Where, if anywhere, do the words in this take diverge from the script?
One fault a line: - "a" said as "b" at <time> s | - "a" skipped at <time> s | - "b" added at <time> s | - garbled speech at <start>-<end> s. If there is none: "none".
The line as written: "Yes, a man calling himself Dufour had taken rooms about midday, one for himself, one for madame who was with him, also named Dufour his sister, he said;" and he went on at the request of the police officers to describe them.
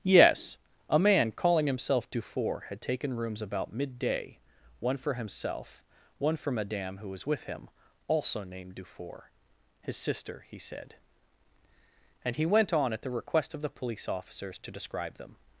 none